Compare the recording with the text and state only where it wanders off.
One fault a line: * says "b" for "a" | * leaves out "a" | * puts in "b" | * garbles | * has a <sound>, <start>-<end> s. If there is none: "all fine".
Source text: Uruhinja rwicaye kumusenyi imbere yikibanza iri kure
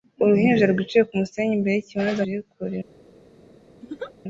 * has a laugh, 3.8-4.1 s